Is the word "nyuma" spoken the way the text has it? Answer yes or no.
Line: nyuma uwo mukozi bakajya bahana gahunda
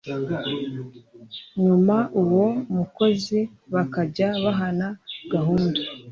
yes